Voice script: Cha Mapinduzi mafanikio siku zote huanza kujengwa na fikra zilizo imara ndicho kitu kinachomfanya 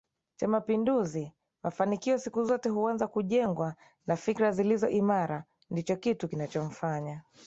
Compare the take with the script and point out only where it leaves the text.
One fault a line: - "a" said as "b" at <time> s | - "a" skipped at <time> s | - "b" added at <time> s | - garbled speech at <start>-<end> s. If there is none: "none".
none